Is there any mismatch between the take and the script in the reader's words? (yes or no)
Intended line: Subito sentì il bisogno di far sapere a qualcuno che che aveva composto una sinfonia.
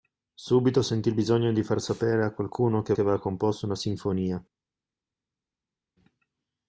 no